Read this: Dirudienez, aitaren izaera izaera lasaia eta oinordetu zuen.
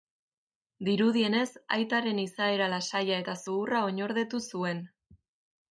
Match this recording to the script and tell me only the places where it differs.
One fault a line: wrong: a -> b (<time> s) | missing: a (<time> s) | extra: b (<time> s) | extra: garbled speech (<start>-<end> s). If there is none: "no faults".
missing: izaera (2.7 s)
extra: zuhurra (3.5 s)